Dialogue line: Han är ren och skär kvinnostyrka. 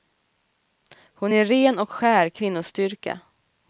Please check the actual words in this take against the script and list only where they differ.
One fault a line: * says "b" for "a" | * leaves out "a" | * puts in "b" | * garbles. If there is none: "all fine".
* says "Hon" for "Han"